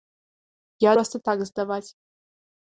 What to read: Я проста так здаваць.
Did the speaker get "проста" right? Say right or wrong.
right